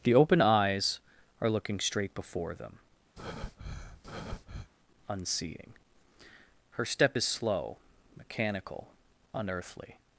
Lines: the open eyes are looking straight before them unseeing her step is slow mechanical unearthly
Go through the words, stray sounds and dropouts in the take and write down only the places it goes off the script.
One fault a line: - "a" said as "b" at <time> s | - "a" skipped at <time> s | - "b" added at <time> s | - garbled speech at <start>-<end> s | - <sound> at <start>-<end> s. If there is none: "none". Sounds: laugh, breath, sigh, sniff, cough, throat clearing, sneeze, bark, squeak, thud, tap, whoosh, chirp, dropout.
- breath at 3.2-4.7 s